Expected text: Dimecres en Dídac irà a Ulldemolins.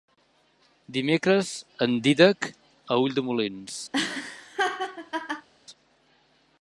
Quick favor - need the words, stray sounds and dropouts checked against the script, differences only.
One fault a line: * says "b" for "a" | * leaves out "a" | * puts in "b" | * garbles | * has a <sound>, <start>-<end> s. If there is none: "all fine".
* leaves out "irà"
* has a laugh, 3.9-5.5 s